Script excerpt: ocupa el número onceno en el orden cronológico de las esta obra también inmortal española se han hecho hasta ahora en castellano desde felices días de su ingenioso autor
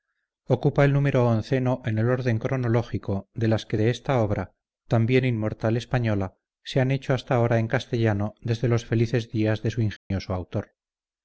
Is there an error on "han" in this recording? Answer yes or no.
no